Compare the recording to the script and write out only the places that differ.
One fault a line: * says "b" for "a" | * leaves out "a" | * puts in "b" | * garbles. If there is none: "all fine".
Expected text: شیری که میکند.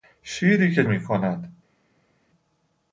all fine